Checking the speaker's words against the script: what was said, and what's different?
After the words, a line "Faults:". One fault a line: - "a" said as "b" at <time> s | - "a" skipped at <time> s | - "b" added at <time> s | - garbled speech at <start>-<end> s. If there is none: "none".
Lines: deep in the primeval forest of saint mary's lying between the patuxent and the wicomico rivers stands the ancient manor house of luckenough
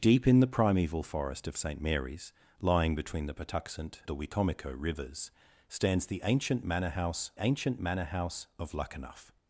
deep in the primeval forest of saint mary's lying between the patuxent the wicomico rivers stands the ancient manor house ancient manor house of luckenough
Faults:
- "and" skipped at 4.0 s
- "ancient manor house" added at 7.4 s